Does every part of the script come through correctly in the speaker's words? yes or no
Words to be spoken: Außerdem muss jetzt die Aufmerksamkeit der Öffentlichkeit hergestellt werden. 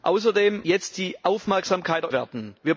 no